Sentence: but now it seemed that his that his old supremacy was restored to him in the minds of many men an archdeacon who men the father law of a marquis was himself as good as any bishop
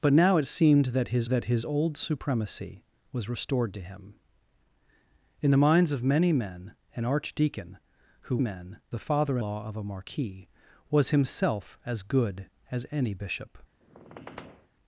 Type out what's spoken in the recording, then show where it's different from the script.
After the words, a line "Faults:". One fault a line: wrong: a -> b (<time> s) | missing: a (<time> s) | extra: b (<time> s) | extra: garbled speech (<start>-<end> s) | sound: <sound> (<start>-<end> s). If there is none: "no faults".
but now it seemed that his that his old supremacy was restored to him in the minds of many men an archdeacon who men the father law of a marquis was himself as good as any bishop
Faults:
sound: squeak (13.8-14.7 s)